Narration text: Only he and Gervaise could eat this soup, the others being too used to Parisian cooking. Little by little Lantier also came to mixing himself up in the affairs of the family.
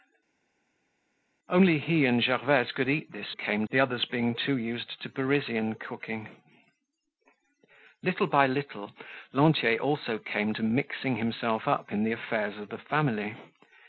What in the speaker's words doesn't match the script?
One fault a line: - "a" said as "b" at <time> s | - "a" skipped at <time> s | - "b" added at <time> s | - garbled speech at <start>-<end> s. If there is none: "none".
- "soup" said as "came" at 3.3 s